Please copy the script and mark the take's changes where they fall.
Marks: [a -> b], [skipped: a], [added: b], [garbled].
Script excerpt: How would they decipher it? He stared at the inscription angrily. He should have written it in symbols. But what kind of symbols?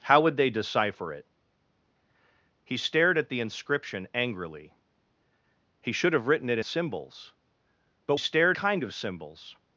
How would they decipher it? He stared at the inscription angrily. He should have written it [skipped: in] symbols. But [what -> stared] kind of symbols?